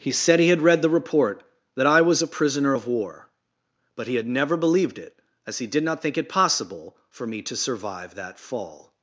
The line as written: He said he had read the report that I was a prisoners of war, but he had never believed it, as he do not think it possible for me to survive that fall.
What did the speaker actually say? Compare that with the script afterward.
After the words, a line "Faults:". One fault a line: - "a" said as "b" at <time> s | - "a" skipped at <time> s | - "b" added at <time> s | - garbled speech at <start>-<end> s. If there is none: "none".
He said he had read the report that I was a prisoner of war, but he had never believed it, as he did not think it possible for me to survive that fall.
Faults:
- "prisoners" said as "prisoner" at 2.3 s
- "do" said as "did" at 5.7 s